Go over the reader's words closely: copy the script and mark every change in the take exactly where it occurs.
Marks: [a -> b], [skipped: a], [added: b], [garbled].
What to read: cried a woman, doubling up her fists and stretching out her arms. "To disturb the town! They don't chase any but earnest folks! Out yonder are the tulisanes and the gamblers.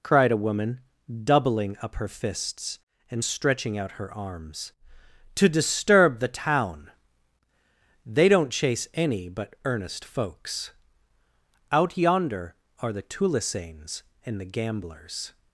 cried a woman, doubling up her fists and stretching out her arms. "To disturb the town! They don't chase any but earnest folks! Out yonder are the tulisanes and the gamblers.